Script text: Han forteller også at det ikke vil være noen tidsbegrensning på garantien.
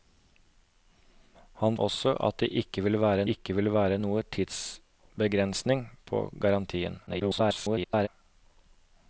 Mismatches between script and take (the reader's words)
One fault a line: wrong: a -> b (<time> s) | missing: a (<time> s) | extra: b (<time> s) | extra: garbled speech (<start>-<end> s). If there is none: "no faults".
missing: forteller (1.8 s)
extra: ikke vil være (3.4 s)
extra: garbled speech (7.1-8.1 s)